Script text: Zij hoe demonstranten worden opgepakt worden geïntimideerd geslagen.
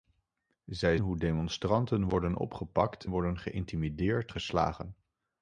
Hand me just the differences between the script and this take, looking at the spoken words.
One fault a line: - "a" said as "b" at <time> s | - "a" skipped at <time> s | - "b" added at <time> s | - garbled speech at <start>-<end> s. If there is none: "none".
none